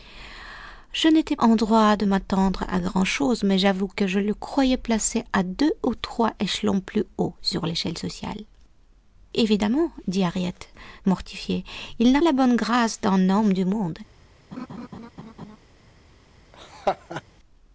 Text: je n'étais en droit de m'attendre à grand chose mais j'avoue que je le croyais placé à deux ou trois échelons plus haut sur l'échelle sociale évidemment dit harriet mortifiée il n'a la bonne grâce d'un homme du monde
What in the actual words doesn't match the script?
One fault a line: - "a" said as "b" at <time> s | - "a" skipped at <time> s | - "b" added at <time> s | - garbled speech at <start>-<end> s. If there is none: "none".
none